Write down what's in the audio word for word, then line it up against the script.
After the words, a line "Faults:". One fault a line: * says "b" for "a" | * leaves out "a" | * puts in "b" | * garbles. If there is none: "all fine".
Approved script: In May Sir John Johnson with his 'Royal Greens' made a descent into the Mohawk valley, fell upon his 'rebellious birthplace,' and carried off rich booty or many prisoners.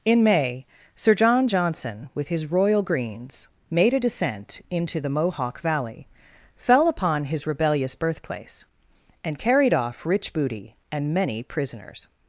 In May Sir John Johnson with his 'Royal Greens' made a descent into the Mohawk valley, fell upon his 'rebellious birthplace,' and carried off rich booty and many prisoners.
Faults:
* says "and" for "or"